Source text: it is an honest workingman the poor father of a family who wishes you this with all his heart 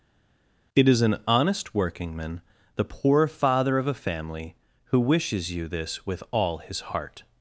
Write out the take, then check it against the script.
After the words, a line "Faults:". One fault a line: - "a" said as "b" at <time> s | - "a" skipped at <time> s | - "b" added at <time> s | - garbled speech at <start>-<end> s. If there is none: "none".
it is an honest workingman the poor father of a family who wishes you this with all his heart
Faults:
none